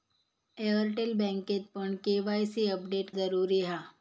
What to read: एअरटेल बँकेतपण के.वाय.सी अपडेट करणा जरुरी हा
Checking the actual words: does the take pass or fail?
fail